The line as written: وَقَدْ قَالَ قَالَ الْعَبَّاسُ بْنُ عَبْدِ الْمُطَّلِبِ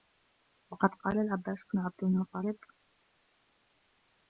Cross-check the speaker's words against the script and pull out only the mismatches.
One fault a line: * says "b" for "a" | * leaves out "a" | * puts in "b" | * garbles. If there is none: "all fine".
* leaves out "قَالَ"